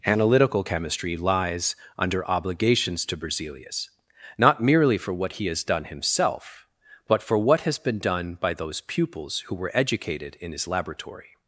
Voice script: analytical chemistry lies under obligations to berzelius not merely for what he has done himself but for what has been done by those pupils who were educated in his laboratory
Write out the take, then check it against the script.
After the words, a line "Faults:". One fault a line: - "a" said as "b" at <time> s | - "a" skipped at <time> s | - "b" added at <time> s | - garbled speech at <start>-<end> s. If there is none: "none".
analytical chemistry lies under obligations to berzelius not merely for what he has done himself but for what has been done by those pupils who were educated in his laboratory
Faults:
none